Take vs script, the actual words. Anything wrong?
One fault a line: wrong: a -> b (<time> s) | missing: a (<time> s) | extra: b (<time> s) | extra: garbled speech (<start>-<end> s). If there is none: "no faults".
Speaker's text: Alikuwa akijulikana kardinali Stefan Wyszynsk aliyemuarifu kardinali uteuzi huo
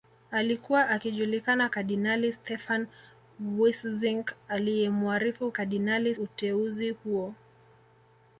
no faults